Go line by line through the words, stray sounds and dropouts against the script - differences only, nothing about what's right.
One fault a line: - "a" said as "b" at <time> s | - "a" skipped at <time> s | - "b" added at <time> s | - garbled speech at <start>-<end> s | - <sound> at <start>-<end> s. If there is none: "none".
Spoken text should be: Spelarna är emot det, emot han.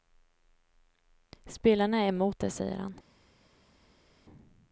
- "emot" said as "säger" at 2.5 s